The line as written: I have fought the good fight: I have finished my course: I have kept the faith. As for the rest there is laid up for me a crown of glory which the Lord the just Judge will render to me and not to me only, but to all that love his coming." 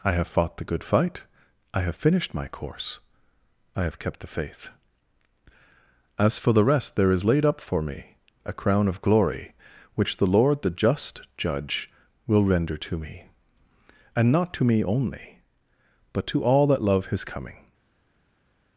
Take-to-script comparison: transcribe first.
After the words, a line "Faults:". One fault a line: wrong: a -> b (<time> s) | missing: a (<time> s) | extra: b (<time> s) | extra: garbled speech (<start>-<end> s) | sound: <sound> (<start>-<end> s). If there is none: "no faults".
I have fought the good fight: I have finished my course: I have kept the faith. As for the rest there is laid up for me a crown of glory which the Lord the just Judge will render to me and not to me only, but to all that love his coming."
Faults:
no faults